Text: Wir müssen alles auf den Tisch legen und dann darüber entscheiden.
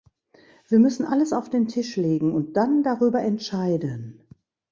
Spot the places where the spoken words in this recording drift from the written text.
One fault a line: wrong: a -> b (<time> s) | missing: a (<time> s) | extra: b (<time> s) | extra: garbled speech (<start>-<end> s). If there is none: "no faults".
no faults